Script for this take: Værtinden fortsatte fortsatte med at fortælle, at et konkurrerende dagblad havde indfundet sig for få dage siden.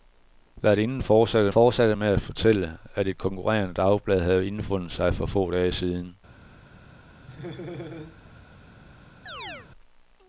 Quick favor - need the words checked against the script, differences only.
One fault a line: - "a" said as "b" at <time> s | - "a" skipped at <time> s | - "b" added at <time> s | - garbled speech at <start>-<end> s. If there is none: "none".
none